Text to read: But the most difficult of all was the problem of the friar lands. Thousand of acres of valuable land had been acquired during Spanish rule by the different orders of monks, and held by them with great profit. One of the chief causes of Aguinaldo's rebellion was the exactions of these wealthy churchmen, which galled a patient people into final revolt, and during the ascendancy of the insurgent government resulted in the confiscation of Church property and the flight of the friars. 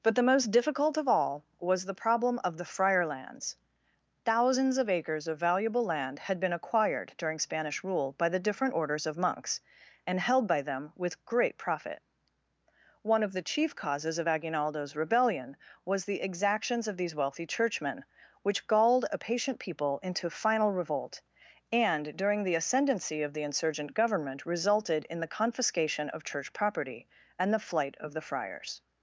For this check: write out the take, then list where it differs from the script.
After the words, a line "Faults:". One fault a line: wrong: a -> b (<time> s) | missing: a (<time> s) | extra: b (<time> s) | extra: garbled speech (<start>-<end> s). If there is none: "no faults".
But the most difficult of all was the problem of the friar lands. Thousands of acres of valuable land had been acquired during Spanish rule by the different orders of monks, and held by them with great profit. One of the chief causes of Aguinaldo's rebellion was the exactions of these wealthy churchmen, which galled a patient people into final revolt, and during the ascendancy of the insurgent government resulted in the confiscation of Church property and the flight of the friars.
Faults:
wrong: Thousand -> Thousands (4.2 s)